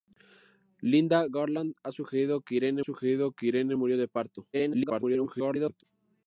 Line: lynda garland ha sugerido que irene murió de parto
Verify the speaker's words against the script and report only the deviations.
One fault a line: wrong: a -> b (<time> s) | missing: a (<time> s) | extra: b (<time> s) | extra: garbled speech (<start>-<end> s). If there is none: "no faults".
extra: sugerido que irene (2.8 s)
extra: garbled speech (4.5-5.8 s)